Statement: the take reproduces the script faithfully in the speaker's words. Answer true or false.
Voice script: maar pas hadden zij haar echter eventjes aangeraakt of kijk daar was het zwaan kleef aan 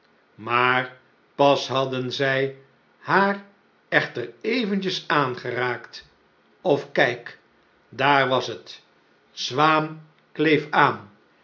true